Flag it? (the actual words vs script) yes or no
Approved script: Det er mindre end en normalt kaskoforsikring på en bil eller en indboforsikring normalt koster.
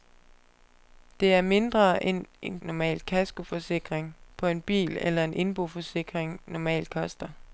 no